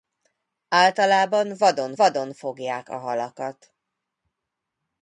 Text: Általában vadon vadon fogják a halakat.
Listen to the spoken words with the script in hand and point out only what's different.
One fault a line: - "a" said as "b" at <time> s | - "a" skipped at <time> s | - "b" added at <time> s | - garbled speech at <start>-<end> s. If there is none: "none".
none